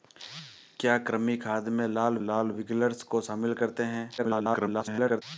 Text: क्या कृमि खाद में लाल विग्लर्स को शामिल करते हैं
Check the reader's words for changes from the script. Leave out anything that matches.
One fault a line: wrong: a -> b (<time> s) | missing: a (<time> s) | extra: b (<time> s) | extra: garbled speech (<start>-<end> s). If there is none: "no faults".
extra: लाल (2.2 s)
extra: garbled speech (4.2-5.2 s)